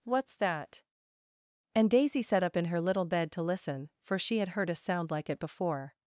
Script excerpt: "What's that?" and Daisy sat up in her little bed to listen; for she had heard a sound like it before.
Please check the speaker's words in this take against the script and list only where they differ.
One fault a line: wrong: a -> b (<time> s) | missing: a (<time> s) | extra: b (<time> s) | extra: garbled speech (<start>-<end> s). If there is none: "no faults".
no faults